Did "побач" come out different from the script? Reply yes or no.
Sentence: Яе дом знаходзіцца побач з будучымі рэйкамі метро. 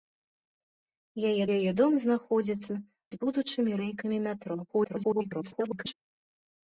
yes